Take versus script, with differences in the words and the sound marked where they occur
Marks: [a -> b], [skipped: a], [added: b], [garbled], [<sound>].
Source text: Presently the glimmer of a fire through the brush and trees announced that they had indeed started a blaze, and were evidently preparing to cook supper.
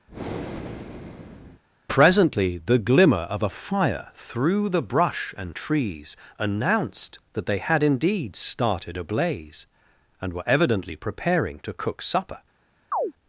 [breath] Presently the glimmer of a fire through the brush and trees announced that they had indeed started a blaze, and were evidently preparing to cook supper. [chirp]